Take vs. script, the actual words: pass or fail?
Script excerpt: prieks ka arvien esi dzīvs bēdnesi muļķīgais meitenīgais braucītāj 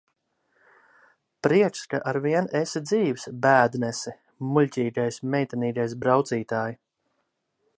pass